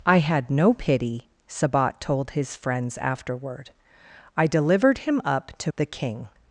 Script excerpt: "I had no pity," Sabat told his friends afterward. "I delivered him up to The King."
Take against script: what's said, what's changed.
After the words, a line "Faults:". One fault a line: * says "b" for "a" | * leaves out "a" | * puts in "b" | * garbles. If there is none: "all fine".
"I had no pity," Sabat told his friends afterward. "I delivered him up to The King."
Faults:
all fine